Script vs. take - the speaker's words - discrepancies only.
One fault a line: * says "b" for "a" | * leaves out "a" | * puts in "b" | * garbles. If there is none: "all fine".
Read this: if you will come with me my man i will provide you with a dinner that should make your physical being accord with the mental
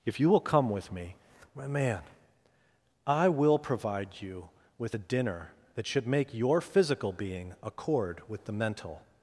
all fine